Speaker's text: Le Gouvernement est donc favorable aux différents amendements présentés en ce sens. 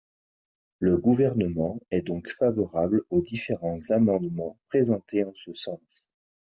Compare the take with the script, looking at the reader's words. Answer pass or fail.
pass